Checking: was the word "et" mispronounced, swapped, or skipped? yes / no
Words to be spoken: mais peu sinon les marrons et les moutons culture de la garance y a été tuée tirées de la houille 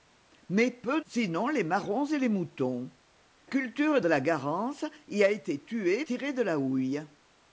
no